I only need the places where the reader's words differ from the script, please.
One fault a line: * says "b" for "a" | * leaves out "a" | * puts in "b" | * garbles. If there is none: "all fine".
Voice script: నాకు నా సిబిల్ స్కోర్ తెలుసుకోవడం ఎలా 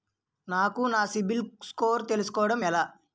all fine